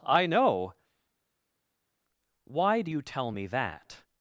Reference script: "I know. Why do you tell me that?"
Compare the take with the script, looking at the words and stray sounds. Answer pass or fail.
pass